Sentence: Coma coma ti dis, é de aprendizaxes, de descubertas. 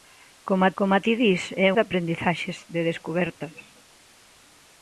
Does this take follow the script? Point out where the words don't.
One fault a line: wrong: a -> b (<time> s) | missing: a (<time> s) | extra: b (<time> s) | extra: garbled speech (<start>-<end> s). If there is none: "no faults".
no faults